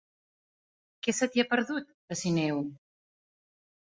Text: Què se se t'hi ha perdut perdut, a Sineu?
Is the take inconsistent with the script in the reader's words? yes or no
yes